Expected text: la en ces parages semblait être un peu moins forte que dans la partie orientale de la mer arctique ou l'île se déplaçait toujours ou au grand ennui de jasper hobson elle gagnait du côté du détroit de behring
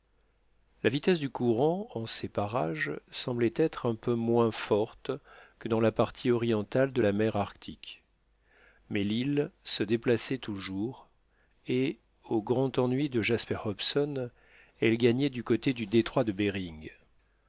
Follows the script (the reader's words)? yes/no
no